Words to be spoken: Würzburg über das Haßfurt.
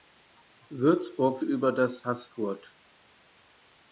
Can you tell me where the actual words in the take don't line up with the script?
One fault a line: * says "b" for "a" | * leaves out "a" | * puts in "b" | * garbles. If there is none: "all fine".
all fine